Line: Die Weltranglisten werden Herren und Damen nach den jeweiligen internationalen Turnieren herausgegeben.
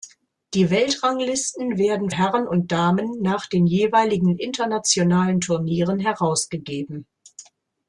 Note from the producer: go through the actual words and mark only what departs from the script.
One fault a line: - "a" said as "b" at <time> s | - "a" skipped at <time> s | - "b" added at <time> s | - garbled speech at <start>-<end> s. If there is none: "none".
none